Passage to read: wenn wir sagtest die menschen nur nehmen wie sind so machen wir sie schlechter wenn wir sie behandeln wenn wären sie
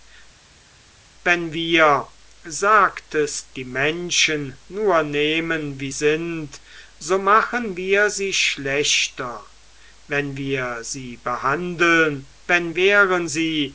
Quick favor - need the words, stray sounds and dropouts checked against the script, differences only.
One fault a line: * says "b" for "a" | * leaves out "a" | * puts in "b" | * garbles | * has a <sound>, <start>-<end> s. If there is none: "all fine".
all fine